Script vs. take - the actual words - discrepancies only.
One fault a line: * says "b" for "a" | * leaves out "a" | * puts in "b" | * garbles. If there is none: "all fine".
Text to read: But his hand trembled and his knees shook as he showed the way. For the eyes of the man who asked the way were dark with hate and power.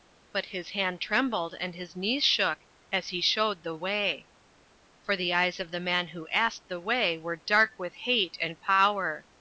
all fine